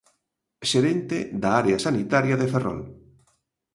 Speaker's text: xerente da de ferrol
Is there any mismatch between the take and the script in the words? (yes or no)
yes